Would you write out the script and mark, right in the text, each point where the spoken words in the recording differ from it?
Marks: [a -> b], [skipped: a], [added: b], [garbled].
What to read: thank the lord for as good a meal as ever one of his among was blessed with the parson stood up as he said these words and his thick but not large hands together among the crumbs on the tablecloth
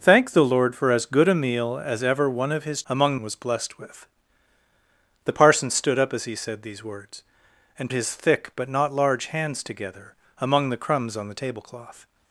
thank the lord for as good a meal as ever one of his among was blessed with the parson stood up as he said these words and his thick but not large hands together among the crumbs on the tablecloth